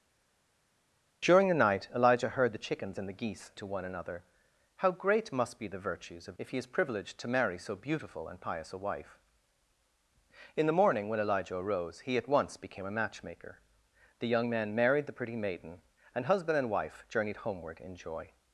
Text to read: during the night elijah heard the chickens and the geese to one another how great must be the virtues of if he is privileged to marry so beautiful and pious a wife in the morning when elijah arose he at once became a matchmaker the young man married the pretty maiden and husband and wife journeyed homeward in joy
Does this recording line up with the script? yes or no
yes